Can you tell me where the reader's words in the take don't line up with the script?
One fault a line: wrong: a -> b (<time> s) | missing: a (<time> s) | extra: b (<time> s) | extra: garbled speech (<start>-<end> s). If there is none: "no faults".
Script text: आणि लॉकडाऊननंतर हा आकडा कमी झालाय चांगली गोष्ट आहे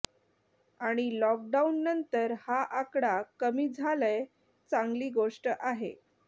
no faults